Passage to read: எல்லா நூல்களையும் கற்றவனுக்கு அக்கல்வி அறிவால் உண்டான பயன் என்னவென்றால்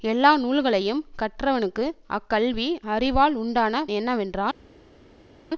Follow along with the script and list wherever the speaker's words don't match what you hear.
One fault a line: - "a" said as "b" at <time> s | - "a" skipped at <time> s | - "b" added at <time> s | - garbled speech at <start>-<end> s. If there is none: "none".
- "பயன்" skipped at 3.8 s